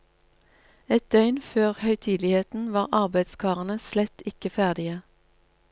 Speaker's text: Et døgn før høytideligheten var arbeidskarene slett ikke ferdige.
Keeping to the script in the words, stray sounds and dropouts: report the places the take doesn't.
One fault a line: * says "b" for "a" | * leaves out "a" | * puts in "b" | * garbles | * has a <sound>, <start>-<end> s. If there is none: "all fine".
all fine